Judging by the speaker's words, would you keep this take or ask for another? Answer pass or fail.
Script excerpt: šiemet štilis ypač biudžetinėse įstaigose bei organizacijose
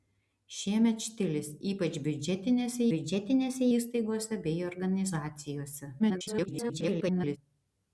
fail